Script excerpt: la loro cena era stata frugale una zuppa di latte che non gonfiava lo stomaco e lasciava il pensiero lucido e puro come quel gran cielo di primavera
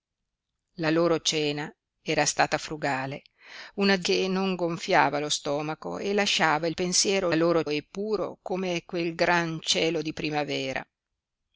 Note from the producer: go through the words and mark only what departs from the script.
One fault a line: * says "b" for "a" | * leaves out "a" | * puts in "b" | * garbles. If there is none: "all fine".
* leaves out "zuppa di latte"
* says "loro" for "lucido"